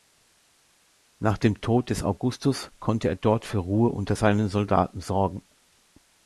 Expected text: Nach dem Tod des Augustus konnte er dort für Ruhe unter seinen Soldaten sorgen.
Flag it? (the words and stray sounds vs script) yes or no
no